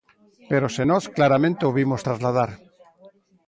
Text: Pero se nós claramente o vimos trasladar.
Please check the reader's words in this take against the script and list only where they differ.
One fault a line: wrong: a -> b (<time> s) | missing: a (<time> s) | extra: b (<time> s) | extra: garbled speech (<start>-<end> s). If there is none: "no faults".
no faults